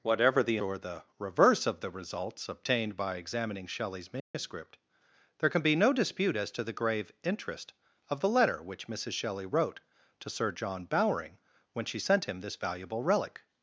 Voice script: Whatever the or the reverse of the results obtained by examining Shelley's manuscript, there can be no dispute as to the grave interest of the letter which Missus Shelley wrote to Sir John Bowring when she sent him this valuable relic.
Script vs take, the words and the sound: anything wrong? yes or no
yes